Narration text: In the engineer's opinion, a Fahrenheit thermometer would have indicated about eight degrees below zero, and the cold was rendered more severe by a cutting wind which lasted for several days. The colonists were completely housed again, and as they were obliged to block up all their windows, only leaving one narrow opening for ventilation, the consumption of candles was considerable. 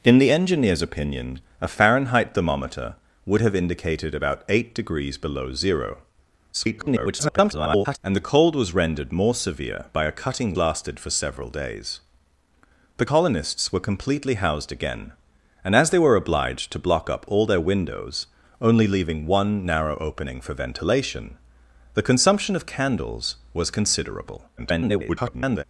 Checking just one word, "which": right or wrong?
wrong